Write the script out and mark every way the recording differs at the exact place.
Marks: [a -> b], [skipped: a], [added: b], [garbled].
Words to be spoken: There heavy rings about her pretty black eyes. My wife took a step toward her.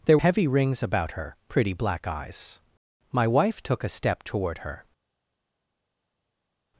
There heavy rings about her pretty black eyes. My wife took a step toward her.